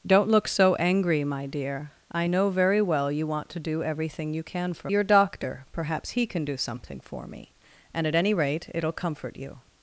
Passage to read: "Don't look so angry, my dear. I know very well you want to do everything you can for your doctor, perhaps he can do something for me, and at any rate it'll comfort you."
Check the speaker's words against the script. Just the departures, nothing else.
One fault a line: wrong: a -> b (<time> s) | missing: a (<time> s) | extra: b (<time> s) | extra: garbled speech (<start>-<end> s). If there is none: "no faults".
no faults